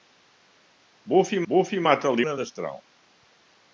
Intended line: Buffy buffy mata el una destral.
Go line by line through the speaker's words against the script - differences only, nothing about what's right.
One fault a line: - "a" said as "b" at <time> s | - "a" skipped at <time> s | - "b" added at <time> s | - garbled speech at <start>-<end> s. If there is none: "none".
none